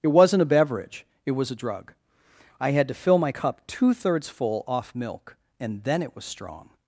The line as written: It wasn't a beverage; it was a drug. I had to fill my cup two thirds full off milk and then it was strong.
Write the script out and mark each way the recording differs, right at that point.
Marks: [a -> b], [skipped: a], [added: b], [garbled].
It wasn't a beverage; it was a drug. I had to fill my cup two thirds full off milk and then it was strong.